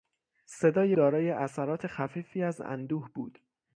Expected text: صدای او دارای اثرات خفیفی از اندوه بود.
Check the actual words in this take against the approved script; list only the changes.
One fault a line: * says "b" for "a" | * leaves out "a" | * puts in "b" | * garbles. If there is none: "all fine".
* leaves out "او"